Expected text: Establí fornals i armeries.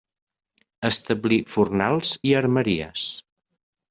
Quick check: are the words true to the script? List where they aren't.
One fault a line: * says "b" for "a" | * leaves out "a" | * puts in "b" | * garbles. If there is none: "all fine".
all fine